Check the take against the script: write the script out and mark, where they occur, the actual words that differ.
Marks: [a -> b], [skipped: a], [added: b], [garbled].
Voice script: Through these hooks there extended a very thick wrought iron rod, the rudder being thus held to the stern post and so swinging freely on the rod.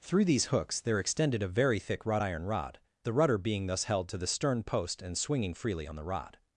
Through these hooks there extended a very thick wrought iron rod, the rudder being thus held to the stern post and [skipped: so] swinging freely on the rod.